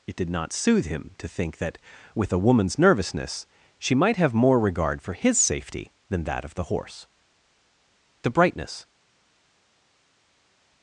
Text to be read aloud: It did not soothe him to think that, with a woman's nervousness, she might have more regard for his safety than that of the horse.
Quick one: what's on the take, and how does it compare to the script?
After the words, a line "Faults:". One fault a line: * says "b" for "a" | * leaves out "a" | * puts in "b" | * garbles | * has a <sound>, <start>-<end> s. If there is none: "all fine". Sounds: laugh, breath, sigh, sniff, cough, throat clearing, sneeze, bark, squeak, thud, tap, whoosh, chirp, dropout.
It did not soothe him to think that, with a woman's nervousness, she might have more regard for his safety than that of the horse. The brightness
Faults:
* puts in "The brightness"